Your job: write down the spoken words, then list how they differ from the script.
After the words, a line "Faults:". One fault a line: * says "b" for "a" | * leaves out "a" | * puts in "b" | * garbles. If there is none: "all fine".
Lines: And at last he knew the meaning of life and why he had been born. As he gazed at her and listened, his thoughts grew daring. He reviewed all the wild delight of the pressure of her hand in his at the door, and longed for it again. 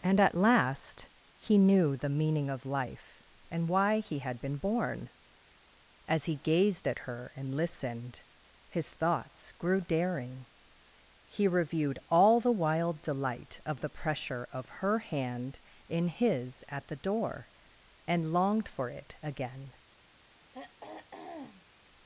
And at last he knew the meaning of life and why he had been born. As he gazed at her and listened, his thoughts grew daring. He reviewed all the wild delight of the pressure of her hand in his at the door, and longed for it again.
Faults:
all fine